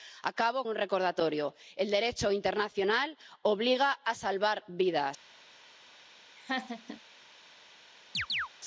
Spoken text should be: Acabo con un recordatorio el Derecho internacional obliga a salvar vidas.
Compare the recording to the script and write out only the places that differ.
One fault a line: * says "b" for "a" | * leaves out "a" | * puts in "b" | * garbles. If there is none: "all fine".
* leaves out "con"